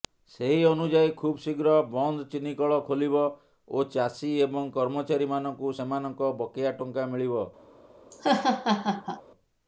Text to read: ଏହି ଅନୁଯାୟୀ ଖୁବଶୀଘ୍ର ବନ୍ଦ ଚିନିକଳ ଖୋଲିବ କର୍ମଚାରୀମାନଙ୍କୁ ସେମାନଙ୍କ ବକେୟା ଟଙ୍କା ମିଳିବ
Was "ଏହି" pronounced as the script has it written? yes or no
no